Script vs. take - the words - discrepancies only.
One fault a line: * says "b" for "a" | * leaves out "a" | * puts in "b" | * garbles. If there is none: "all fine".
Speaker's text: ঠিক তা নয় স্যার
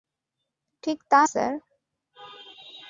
* leaves out "নয়"